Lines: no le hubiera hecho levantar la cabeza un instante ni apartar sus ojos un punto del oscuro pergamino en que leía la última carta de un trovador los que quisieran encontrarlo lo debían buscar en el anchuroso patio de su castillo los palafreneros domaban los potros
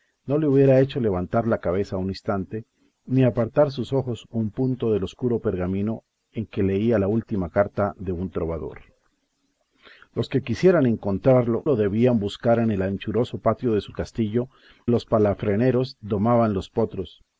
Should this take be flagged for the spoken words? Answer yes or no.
no